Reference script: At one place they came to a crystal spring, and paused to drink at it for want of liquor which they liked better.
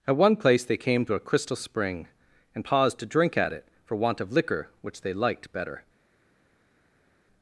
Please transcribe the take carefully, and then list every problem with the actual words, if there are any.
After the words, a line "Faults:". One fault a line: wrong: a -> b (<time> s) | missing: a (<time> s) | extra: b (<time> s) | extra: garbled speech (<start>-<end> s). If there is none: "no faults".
At one place they came to a crystal spring, and paused to drink at it for want of liquor which they liked better.
Faults:
no faults